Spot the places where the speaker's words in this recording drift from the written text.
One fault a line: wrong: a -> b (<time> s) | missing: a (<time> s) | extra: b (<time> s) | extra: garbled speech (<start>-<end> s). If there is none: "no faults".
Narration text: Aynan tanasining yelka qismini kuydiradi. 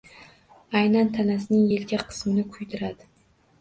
no faults